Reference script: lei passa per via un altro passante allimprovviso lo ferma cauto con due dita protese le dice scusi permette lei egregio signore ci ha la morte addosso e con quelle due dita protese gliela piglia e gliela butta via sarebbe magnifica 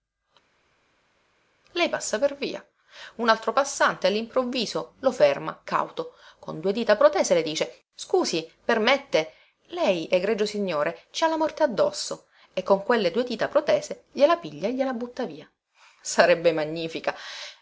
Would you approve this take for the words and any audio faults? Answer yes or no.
yes